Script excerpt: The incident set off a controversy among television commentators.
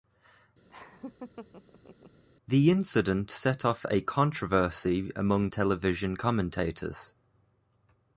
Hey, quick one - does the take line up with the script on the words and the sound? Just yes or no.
no